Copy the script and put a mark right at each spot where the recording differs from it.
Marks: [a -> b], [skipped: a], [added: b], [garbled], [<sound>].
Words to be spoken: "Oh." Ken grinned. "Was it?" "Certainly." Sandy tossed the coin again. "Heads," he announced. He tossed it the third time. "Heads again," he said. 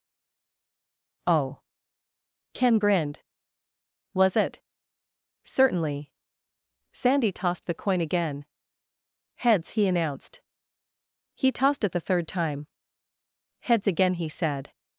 "Oh." Ken grinned. "Was it?" "Certainly." Sandy tossed the coin again. "Heads," he announced. He tossed it the third time. "Heads again," he said.